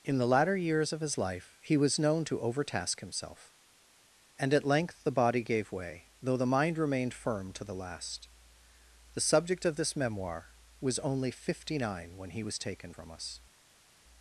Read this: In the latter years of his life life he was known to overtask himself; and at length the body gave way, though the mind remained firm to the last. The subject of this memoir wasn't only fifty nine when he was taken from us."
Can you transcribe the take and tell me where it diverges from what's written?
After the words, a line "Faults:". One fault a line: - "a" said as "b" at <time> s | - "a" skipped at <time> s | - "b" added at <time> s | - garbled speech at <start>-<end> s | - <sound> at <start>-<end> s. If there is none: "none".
In the latter years of his life he was known to overtask himself; and at length the body gave way, though the mind remained firm to the last. The subject of this memoir was only fifty nine when he was taken from us."
Faults:
- "life" skipped at 1.6 s
- "wasn't" said as "was" at 10.8 s